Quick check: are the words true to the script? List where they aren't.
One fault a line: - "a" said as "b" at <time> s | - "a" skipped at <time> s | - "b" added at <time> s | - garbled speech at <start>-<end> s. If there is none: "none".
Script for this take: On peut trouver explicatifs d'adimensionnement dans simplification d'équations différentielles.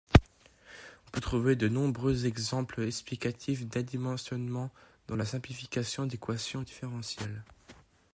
- "de nombreux exemples" added at 1.6 s
- "la" added at 5.1 s